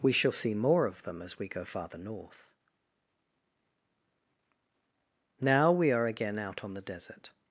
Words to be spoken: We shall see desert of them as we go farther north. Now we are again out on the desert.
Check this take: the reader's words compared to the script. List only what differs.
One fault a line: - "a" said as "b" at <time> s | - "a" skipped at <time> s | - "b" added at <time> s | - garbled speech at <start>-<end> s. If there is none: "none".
- "desert" said as "more" at 0.5 s